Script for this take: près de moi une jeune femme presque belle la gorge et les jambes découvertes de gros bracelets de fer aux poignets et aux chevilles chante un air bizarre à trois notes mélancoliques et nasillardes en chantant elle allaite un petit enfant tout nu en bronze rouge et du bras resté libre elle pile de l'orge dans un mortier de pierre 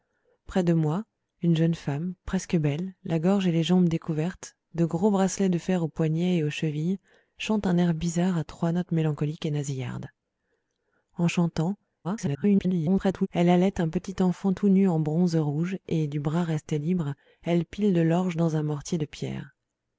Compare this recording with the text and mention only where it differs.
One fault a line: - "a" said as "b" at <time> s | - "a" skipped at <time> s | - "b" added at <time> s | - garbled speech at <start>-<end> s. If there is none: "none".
- garbled speech at 12.0-13.3 s